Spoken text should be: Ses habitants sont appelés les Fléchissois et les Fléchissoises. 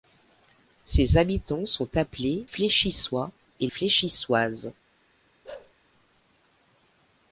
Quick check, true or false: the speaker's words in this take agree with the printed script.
false